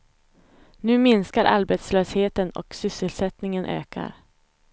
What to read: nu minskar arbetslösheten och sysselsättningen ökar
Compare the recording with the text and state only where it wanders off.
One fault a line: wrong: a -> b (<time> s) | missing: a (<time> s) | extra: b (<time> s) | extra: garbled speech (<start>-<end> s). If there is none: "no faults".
no faults